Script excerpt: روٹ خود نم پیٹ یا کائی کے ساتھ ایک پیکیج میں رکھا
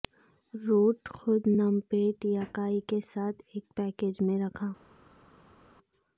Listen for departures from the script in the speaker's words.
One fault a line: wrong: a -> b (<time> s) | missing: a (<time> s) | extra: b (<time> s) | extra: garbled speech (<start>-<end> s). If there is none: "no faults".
no faults